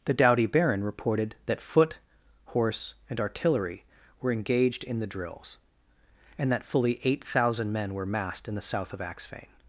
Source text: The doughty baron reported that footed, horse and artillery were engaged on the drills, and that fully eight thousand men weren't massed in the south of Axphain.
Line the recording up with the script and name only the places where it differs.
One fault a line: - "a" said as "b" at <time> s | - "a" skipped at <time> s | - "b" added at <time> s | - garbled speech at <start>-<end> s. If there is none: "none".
- "footed" said as "foot" at 1.6 s
- "on" said as "in" at 4.8 s
- "weren't" said as "were" at 7.9 s